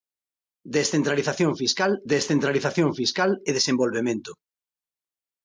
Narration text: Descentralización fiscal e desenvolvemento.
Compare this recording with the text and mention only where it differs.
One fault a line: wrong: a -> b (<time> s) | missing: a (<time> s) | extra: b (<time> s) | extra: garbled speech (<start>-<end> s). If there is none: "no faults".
extra: descentralización fiscal (2.1 s)